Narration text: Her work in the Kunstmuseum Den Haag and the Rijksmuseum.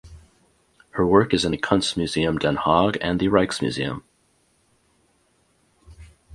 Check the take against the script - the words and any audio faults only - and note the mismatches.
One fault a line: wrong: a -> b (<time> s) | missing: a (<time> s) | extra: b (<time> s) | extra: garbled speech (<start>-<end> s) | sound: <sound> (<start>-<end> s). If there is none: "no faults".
extra: is (1.3 s)